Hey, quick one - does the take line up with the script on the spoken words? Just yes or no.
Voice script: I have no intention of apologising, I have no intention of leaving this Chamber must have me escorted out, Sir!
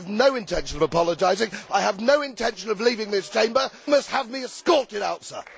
yes